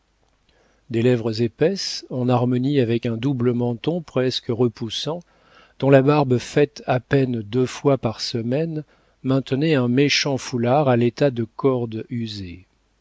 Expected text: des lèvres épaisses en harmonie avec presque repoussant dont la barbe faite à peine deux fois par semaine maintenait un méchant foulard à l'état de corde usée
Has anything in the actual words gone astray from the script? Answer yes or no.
yes